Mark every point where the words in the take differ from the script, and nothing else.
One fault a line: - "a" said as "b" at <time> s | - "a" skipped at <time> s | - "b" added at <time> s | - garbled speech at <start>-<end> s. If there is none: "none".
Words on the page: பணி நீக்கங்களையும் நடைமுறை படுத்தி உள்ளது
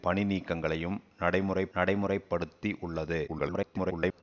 - "நடைமுறை" added at 1.7 s
- garbled speech at 3.3-4.2 s